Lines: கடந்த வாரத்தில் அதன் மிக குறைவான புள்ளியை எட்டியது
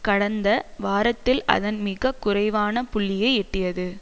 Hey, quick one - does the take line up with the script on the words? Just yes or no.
yes